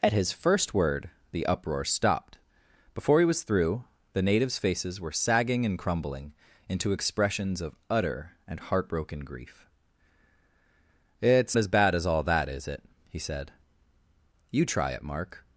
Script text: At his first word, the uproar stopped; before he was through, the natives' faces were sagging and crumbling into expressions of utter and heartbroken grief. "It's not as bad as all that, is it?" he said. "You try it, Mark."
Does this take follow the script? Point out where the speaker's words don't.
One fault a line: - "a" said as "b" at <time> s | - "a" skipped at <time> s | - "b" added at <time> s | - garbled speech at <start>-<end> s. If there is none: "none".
- "not" skipped at 11.6 s